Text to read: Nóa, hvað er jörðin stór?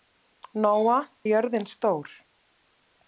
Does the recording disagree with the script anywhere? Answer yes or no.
yes